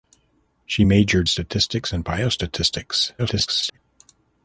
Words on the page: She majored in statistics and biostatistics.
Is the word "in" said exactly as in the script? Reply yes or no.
no